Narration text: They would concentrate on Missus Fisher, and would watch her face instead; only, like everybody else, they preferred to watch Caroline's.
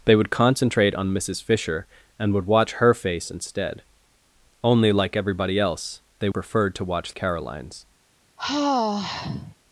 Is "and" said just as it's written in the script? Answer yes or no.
yes